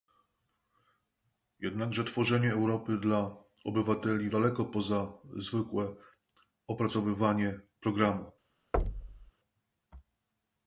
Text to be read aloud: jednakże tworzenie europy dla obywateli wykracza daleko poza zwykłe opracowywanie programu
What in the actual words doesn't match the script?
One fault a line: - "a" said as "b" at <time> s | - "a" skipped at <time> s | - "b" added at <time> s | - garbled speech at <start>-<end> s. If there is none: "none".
- "wykracza" skipped at 4.3 s